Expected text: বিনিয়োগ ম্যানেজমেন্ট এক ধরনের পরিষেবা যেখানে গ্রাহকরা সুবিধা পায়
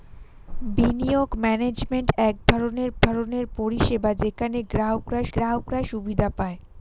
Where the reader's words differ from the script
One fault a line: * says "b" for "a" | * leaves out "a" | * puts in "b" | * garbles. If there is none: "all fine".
* puts in "ধরনের"
* puts in "গ্রাহকরা"